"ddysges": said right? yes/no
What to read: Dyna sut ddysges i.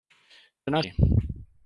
no